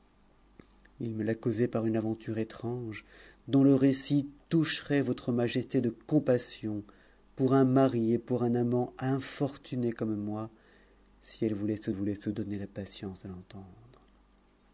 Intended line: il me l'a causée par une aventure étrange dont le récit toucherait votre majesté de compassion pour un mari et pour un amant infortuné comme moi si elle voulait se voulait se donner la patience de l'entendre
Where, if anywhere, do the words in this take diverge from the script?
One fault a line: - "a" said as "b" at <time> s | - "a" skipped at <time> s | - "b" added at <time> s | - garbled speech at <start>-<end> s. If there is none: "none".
none